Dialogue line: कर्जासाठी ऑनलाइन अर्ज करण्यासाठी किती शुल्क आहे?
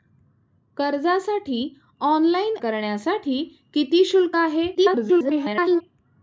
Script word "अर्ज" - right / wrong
wrong